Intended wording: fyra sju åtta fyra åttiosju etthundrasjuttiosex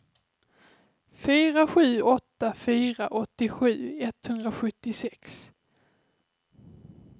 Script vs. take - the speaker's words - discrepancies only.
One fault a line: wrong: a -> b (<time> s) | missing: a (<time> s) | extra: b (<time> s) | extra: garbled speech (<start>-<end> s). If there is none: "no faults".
no faults